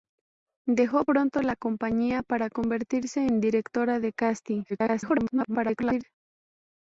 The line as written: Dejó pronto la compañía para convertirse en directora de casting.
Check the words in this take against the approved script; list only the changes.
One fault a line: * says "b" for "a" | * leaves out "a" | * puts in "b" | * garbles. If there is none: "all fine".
* garbles